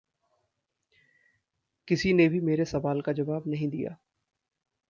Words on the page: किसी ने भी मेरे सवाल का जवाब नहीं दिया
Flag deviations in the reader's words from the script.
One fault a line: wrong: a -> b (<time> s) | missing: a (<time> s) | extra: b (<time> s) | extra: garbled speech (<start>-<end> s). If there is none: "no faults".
no faults